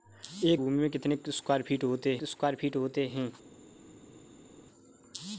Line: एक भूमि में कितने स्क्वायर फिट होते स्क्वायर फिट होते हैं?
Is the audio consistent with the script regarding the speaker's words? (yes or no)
yes